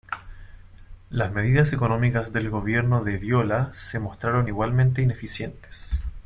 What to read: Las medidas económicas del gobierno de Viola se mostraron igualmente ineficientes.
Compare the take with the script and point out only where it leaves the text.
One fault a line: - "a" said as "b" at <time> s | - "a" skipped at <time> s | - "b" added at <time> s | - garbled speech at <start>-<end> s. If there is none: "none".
none